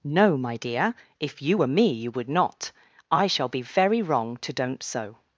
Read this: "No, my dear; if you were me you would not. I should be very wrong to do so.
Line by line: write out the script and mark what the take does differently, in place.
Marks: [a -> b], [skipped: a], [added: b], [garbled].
"No, my dear; if you were me you would not. I [should -> shall] be very wrong to [do -> don't] so.